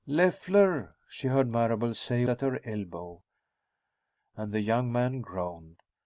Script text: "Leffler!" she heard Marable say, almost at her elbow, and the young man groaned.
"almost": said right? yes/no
no